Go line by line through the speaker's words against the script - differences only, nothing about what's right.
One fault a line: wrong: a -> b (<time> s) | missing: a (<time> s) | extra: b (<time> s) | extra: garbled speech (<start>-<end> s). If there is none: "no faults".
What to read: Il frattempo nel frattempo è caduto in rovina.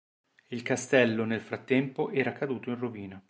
wrong: frattempo -> castello (0.6 s)
wrong: è -> era (2.1 s)